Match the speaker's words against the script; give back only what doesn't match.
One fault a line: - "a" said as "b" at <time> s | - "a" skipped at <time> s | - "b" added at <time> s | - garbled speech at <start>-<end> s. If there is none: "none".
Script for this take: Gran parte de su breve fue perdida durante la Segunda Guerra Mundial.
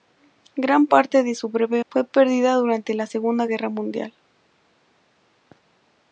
none